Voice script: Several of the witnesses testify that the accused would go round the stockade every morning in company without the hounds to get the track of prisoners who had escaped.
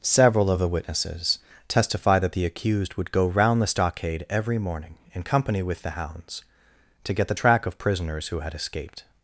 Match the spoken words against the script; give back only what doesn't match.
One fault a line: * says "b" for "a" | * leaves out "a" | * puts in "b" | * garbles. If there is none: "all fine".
* says "with" for "without"